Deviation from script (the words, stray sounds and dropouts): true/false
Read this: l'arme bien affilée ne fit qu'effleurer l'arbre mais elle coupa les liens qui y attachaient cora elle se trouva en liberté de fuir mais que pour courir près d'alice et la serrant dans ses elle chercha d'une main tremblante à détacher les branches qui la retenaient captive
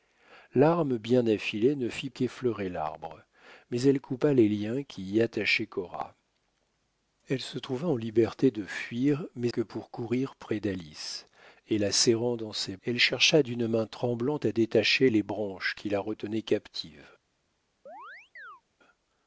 true